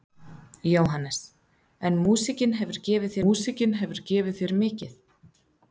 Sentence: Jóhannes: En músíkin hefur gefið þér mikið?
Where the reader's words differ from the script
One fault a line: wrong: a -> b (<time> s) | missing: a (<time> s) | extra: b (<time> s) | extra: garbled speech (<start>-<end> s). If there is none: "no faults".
extra: músíkin hefur gefið (3.2 s)